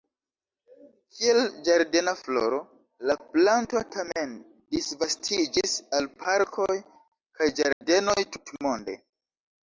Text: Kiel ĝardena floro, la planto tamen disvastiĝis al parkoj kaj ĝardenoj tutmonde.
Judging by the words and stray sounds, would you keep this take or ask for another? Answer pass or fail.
fail